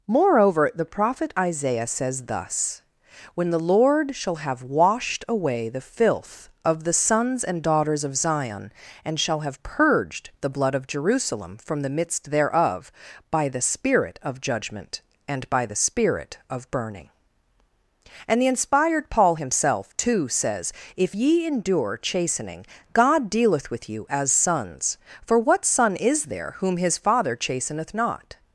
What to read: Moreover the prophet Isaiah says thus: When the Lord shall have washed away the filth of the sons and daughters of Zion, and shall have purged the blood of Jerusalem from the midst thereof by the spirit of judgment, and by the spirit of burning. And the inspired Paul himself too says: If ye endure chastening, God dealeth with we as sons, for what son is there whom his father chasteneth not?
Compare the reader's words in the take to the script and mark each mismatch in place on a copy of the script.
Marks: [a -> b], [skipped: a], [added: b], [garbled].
Moreover the prophet Isaiah says thus: When the Lord shall have washed away the filth of the sons and daughters of Zion, and shall have purged the blood of Jerusalem from the midst thereof by the spirit of judgment, and by the spirit of burning. And the inspired Paul himself too says: If ye endure chastening, God dealeth with [we -> you] as sons, for what son is there whom his father chasteneth not?